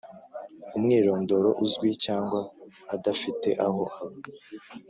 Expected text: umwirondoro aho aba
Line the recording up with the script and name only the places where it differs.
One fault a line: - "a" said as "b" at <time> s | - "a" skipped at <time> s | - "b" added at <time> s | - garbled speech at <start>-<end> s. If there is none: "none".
- "uzwi cyangwa adafite" added at 1.6 s